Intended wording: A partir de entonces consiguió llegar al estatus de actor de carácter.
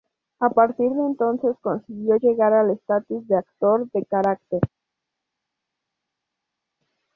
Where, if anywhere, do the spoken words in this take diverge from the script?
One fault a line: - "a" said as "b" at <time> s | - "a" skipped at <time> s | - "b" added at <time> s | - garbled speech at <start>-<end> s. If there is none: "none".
none